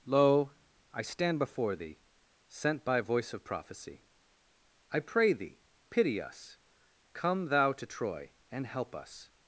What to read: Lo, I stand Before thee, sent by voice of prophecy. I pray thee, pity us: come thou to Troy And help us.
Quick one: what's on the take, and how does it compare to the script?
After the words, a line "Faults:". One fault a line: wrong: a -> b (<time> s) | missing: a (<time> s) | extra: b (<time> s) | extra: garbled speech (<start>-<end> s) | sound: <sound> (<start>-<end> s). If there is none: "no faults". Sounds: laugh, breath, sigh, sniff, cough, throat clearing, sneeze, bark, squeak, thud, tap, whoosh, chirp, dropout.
Lo, I stand Before thee, sent by voice of prophecy. I pray thee, pity us: come thou to Troy And help us.
Faults:
no faults